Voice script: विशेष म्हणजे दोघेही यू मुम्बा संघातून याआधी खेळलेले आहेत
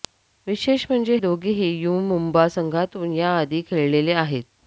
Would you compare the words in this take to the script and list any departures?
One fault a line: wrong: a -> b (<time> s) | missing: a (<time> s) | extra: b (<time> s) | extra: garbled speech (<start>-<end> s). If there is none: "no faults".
no faults